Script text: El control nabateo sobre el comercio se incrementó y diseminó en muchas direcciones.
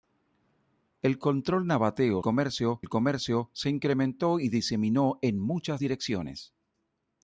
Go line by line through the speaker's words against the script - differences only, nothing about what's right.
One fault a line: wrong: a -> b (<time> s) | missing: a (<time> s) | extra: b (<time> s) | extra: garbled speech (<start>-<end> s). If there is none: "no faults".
wrong: sobre -> comercio (2.2 s)